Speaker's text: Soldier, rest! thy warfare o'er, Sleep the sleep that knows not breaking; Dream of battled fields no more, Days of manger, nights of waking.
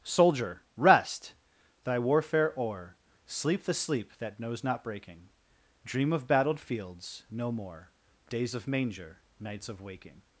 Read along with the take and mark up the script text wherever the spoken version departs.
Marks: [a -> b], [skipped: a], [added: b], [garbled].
Soldier, rest! thy warfare o'er, Sleep the sleep that knows not breaking; Dream of battled fields no more, Days of manger, nights of waking.